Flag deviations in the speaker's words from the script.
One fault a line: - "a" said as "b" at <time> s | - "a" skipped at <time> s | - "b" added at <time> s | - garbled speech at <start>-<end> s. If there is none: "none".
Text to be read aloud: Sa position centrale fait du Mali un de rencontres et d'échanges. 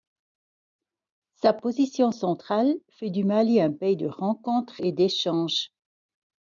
- "pays" added at 3.7 s